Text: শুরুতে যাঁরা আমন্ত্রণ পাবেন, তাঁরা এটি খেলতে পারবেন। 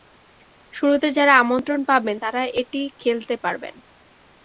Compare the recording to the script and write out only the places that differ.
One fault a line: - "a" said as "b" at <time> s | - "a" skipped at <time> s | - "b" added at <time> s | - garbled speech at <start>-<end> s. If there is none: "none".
none